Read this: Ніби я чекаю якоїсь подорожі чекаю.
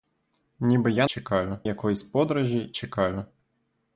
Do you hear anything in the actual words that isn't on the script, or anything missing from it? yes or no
no